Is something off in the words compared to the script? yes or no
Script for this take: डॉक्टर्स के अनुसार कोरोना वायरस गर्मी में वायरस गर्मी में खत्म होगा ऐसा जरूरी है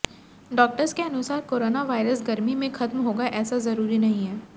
yes